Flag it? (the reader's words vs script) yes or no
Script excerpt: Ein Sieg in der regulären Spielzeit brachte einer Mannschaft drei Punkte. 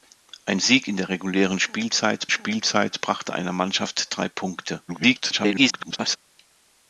yes